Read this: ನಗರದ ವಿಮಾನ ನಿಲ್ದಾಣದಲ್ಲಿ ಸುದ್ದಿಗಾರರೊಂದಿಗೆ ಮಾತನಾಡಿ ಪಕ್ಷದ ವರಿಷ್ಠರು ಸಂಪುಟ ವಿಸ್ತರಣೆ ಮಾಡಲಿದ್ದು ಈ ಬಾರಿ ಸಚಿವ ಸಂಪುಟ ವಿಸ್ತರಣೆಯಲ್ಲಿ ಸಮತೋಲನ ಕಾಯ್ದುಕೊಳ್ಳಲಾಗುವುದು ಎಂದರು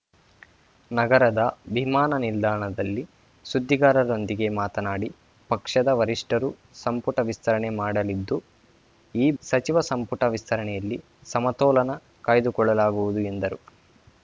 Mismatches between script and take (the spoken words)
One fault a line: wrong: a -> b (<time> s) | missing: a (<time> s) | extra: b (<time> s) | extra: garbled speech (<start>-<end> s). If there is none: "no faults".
missing: ಬಾರಿ (9.3 s)